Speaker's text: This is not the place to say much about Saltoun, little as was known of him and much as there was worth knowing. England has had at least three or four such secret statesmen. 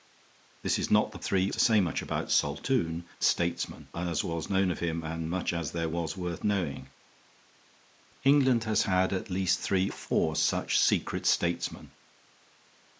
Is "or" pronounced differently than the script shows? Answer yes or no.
yes